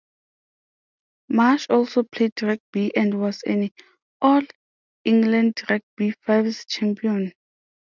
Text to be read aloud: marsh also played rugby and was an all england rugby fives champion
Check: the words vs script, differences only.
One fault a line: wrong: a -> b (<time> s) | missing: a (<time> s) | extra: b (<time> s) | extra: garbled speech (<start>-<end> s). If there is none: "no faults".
no faults